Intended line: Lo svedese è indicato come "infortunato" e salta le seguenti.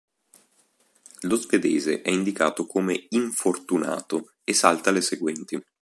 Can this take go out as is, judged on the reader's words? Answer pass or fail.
pass